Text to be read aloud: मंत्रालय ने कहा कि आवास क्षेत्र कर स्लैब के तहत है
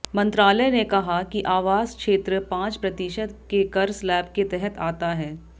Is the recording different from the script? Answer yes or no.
yes